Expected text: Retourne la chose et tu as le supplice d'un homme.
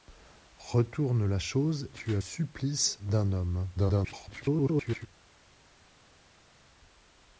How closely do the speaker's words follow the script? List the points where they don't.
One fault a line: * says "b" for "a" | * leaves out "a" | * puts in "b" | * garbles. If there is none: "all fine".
* leaves out "et"
* leaves out "le"
* garbles